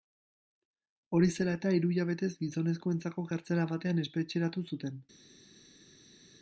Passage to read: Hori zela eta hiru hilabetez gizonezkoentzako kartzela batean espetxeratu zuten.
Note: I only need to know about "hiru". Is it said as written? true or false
true